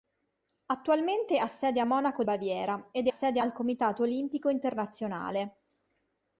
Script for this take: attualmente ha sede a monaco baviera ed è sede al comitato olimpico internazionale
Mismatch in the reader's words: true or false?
false